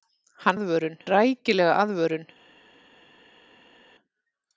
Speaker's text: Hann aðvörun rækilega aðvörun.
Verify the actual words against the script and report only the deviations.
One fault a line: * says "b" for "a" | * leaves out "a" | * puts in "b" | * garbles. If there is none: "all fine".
all fine